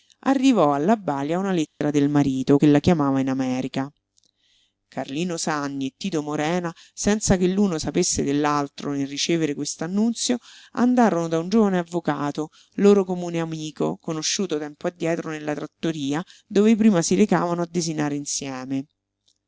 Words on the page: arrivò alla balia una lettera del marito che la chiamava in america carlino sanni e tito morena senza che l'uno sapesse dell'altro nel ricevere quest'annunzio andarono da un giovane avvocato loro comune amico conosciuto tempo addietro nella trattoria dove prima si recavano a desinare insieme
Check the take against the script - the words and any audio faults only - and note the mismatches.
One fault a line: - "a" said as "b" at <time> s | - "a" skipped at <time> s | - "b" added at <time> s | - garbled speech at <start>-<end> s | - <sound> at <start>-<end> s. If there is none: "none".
- dropout at 1.7-1.8 s